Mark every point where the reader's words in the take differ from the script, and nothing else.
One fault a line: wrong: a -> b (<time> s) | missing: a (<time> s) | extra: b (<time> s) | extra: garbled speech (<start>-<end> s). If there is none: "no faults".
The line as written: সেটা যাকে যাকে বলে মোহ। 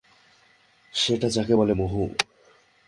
missing: যাকে (1.5 s)